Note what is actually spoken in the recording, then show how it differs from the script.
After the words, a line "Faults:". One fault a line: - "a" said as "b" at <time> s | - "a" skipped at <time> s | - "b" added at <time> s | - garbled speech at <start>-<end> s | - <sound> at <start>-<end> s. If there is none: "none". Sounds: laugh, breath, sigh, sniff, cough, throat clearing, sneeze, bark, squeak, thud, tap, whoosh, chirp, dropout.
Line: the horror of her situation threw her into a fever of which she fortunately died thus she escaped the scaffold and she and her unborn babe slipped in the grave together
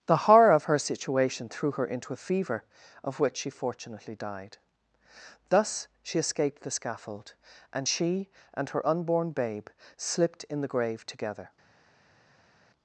the horror of her situation threw her into a fever of which she fortunately died thus she escaped the scaffold and she and her unborn babe slipped in the grave together
Faults:
none